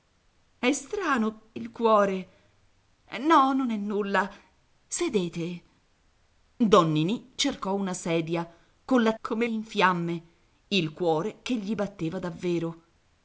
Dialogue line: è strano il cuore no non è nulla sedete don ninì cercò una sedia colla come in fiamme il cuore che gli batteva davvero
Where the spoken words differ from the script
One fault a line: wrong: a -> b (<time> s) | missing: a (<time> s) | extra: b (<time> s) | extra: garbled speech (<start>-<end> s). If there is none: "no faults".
no faults